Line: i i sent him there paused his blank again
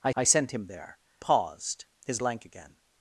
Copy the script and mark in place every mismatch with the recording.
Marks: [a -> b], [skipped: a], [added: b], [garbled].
i i sent him there paused his blank again